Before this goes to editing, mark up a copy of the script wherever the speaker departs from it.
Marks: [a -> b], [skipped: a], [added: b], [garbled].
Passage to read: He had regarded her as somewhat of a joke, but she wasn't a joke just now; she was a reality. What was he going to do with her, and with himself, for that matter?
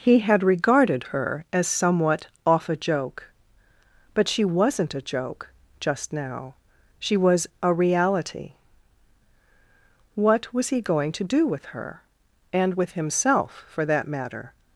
He had regarded her as somewhat [of -> off] a joke, but she wasn't a joke just now; she was a reality. What was he going to do with her, and with himself, for that matter?